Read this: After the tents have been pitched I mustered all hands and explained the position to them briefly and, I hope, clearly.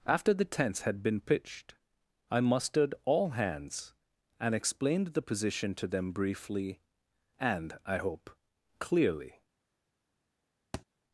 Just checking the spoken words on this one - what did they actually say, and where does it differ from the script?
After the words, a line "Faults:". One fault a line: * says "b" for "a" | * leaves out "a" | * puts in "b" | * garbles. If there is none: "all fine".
After the tents had been pitched I mustered all hands and explained the position to them briefly and, I hope, clearly.
Faults:
* says "had" for "have"